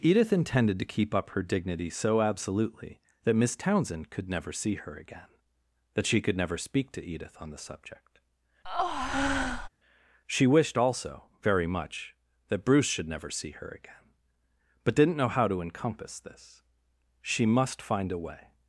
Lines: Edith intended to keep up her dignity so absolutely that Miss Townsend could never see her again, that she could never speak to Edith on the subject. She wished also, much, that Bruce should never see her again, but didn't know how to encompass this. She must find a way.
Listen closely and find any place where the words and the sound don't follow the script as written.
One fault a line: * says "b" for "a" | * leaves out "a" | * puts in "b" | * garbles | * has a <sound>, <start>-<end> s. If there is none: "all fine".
* has a breath, 8.6-9.7 s
* puts in "very"